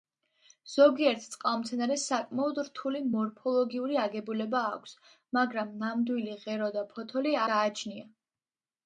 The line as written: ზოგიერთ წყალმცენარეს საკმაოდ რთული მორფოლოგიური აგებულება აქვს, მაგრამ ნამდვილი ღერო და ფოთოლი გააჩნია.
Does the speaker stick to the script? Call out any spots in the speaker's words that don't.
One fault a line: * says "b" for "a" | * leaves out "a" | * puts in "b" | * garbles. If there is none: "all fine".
all fine